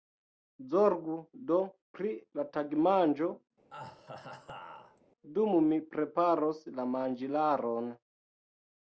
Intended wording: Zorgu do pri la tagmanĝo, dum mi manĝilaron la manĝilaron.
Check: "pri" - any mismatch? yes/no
no